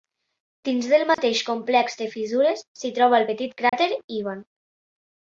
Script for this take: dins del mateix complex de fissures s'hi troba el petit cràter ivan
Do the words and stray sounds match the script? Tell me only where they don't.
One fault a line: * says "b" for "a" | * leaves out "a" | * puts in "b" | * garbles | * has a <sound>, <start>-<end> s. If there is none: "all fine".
* has a dropout, 1.1-1.2 s
* has a dropout, 3.7-3.7 s